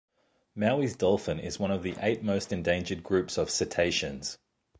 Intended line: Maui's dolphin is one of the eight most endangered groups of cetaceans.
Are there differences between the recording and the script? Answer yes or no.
no